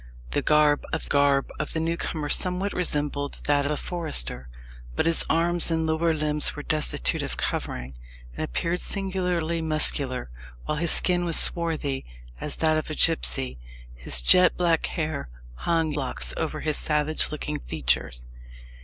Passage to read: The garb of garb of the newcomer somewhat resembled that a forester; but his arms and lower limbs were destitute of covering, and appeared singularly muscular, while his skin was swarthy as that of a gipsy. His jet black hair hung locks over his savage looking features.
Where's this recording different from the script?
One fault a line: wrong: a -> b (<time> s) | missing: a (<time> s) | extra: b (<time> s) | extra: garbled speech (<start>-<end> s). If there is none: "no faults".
no faults